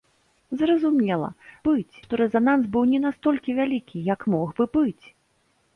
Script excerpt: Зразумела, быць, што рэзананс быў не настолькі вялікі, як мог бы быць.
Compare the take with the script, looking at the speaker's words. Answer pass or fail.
pass